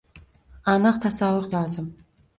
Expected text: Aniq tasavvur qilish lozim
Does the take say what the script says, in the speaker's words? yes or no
no